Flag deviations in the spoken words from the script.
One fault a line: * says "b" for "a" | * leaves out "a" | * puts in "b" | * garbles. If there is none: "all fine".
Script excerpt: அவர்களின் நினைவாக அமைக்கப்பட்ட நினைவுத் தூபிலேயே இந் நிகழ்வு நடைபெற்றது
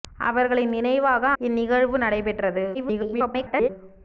* leaves out "அமைக்கப்பட்ட நினைவுத் தூபிலேயே"
* garbles